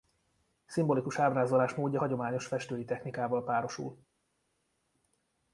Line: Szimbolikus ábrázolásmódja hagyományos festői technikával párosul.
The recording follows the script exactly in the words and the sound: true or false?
true